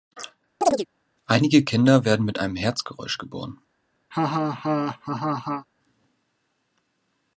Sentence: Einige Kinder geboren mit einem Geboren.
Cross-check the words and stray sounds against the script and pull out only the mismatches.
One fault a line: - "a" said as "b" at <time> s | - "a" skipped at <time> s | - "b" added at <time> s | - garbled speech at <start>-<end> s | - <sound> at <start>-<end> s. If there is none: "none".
- chirp at 0.6-0.9 s
- "geboren" said as "werden" at 2.0 s
- "Herzgeräusch" added at 2.5 s
- laugh at 4.1-5.7 s